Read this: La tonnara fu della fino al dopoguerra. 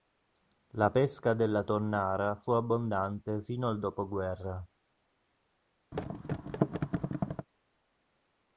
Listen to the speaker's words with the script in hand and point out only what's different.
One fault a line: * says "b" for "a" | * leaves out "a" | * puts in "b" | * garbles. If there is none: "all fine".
* puts in "pesca della"
* says "abbondante" for "della"